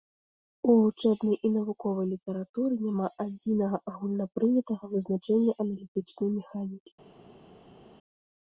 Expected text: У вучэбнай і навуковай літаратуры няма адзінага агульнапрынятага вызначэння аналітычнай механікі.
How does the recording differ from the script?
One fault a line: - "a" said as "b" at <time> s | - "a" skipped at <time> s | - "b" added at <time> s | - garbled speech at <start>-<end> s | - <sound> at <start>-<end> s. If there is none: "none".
none